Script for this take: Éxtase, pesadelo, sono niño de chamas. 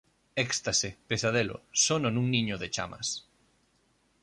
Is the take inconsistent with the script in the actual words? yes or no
yes